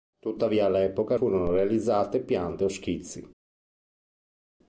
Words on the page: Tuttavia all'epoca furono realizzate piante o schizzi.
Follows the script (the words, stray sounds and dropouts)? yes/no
yes